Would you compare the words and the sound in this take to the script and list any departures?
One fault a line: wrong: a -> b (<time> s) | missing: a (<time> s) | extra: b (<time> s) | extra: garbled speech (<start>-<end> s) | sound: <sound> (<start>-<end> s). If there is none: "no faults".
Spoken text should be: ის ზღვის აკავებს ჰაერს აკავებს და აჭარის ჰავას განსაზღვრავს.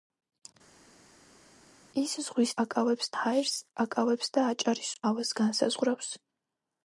no faults